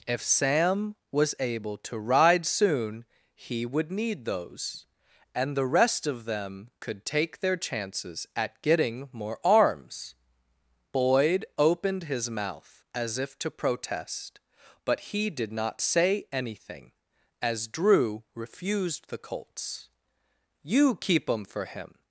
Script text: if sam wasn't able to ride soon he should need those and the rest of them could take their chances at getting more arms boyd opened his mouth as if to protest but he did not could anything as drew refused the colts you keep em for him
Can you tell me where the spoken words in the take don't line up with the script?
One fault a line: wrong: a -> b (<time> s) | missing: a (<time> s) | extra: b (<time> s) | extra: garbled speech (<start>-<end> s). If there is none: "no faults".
wrong: wasn't -> was (1.1 s)
wrong: should -> would (3.6 s)
wrong: could -> say (15.8 s)